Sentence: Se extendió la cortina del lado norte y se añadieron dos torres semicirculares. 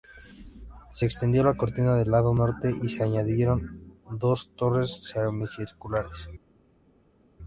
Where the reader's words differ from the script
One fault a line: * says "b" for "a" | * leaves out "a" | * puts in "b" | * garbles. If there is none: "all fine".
all fine